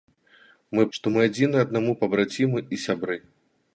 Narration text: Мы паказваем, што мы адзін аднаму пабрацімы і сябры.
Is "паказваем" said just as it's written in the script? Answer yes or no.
no